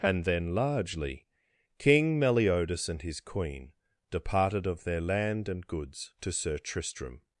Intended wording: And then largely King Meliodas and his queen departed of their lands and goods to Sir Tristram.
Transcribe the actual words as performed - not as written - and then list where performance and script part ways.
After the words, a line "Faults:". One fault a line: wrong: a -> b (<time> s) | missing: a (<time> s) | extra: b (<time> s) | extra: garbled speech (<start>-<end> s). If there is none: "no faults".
And then largely King Meliodas and his queen departed of their land and goods to Sir Tristram.
Faults:
wrong: lands -> land (5.0 s)